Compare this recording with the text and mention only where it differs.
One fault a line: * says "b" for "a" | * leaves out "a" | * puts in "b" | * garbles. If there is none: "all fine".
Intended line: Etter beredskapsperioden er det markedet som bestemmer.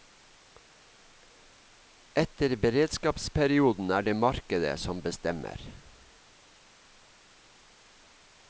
all fine